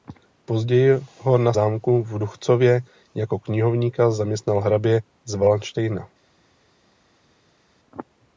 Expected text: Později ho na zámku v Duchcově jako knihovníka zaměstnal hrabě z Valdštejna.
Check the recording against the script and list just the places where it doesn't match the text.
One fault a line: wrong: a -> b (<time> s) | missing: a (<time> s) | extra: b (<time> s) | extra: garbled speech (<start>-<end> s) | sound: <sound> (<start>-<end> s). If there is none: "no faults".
no faults